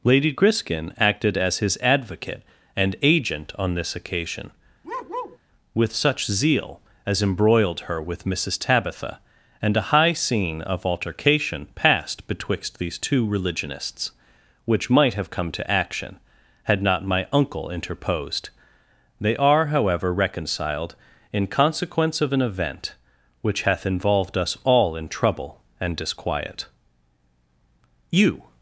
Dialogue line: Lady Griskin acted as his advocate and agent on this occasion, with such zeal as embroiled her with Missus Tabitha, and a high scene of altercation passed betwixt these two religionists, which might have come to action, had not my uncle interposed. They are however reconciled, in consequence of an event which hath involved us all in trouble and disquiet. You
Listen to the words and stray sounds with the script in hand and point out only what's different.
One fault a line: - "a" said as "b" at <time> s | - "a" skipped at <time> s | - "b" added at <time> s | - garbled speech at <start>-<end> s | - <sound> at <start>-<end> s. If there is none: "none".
- bark at 4.8-5.4 s